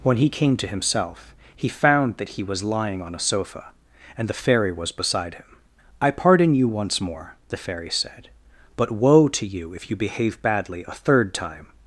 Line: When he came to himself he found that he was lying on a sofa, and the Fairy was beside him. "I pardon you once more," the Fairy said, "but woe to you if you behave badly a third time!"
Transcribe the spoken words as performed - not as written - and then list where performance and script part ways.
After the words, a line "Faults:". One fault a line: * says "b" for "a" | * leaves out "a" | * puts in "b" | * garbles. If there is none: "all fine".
When he came to himself he found that he was lying on a sofa, and the Fairy was beside him. "I pardon you once more," the Fairy said, "but woe to you if you behave badly a third time!"
Faults:
all fine